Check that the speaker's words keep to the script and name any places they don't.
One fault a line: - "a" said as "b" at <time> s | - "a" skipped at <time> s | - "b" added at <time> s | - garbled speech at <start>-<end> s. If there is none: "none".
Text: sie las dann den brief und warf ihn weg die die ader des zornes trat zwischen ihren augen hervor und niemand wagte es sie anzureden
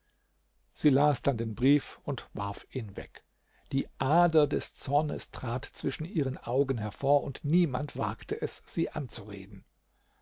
- "die" skipped at 3.9 s